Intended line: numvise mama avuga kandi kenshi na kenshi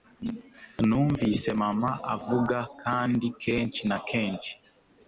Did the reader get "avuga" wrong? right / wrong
right